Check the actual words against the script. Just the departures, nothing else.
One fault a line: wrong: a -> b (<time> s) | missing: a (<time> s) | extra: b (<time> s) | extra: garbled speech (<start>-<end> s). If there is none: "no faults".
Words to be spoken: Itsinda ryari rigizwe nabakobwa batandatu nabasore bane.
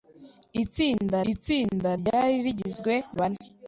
extra: itsinda (1.3 s)
missing: nabakobwa batandatu nabasore (2.9 s)